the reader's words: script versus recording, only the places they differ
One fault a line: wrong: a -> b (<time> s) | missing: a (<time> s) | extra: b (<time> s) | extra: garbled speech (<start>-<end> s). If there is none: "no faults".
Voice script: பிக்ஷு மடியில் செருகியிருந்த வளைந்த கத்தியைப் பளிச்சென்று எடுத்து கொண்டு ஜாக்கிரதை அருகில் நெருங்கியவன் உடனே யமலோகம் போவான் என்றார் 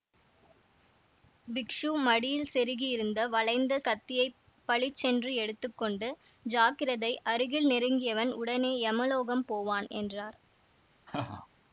no faults